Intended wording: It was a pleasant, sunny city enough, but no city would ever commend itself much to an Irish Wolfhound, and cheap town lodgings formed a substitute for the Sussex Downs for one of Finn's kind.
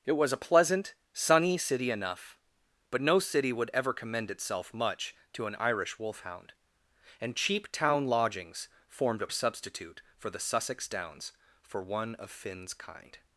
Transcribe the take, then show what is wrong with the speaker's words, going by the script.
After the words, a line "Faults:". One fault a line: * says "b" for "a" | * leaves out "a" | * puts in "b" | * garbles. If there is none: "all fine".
It was a pleasant, sunny city enough, but no city would ever commend itself much to an Irish Wolfhound, and cheap town lodgings formed a substitute for the Sussex Downs for one of Finn's kind.
Faults:
all fine